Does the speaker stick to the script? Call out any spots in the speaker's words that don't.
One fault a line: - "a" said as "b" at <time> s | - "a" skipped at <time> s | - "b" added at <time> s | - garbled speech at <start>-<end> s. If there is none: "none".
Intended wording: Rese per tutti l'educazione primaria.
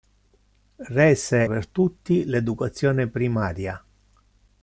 none